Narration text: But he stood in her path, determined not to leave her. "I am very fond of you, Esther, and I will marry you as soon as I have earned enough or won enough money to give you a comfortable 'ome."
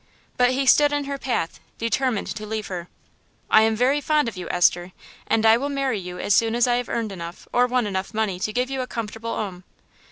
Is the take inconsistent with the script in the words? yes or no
yes